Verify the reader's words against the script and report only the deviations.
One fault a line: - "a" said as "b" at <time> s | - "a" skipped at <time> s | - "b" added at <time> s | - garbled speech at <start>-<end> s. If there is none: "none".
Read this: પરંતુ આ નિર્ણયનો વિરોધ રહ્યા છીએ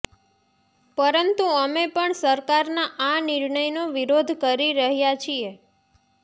- "અમે પણ સરકારના" added at 1.6 s
- "કરી" added at 4.4 s